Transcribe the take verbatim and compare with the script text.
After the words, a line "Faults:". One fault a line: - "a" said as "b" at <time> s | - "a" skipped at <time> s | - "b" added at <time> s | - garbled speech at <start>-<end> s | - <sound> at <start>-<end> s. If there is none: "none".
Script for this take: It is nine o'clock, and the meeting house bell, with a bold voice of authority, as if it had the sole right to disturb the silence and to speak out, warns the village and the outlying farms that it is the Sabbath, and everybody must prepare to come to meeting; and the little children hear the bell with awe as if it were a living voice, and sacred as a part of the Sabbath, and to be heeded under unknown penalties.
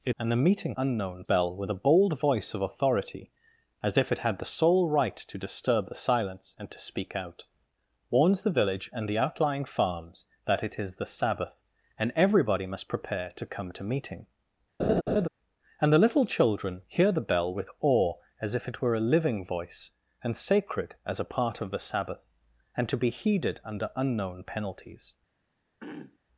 It and the meeting unknown bell, with a bold voice of authority, as if it had the sole right to disturb the silence and to speak out, warns the village and the outlying farms that it is the Sabbath, and everybody must prepare to come to meeting; and the little children hear the bell with awe as if it were a living voice, and sacred as a part of the Sabbath, and to be heeded under unknown penalties.
Faults:
- "is nine o'clock" skipped at 0.1 s
- "house" said as "unknown" at 0.8 s
- laugh at 14.8-15.3 s
- throat clearing at 25.8-26.2 s